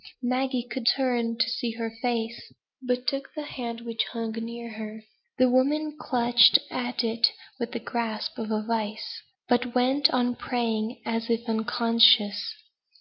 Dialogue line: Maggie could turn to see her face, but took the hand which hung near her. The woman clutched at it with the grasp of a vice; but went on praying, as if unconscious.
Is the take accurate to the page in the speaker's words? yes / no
yes